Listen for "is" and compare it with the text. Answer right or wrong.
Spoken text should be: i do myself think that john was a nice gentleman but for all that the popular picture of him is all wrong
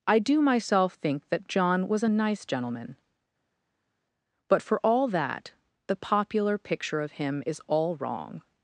right